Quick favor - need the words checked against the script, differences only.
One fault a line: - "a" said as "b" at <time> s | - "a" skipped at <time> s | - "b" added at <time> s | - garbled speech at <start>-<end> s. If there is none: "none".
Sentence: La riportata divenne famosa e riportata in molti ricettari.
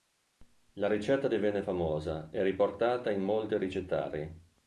- "riportata" said as "ricetta" at 0.9 s